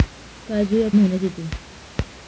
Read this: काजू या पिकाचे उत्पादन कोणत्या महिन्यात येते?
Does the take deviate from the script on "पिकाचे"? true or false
true